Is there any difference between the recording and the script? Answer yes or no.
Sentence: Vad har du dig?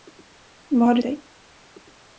no